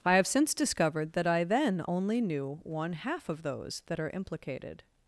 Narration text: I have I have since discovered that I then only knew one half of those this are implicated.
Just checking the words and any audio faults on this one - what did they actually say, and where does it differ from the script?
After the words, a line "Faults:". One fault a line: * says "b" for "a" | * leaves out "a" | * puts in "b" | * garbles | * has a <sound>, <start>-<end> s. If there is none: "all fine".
I have since discovered that I then only knew one half of those that are implicated.
Faults:
* leaves out "I have"
* says "that" for "this"